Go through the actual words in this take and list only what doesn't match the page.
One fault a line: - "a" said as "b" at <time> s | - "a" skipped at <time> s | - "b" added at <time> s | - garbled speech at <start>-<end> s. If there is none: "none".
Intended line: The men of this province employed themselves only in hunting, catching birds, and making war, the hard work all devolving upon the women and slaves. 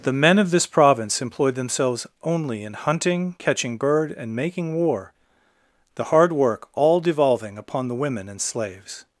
- "birds" said as "bird" at 3.8 s